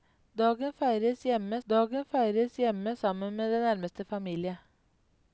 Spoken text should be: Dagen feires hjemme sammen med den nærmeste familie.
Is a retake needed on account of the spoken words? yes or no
yes